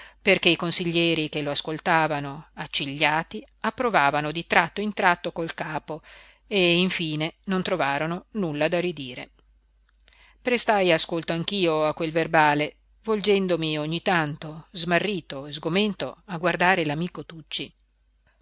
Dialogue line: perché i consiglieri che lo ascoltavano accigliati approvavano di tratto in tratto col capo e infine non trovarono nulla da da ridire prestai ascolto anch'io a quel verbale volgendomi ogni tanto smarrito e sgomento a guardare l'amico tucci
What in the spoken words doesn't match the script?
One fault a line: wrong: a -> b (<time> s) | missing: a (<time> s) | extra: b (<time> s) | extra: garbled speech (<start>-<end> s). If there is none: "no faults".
missing: da (8.8 s)